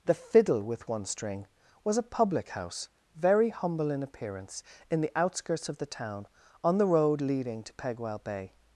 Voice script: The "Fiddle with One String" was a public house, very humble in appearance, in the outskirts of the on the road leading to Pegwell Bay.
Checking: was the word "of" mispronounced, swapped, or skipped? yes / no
no